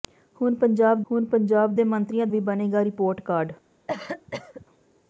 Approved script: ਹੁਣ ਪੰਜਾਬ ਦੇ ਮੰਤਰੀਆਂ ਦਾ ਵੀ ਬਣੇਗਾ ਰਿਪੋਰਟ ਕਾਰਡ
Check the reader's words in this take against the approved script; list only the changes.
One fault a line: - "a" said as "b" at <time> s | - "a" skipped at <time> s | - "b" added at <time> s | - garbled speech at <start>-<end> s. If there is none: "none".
- "ਹੁਣ ਪੰਜਾਬ" added at 1.1 s
- "ਦਾ" skipped at 2.3 s